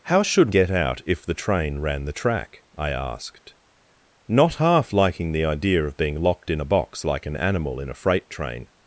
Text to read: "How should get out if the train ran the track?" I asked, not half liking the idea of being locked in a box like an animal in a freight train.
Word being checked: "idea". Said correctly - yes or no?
yes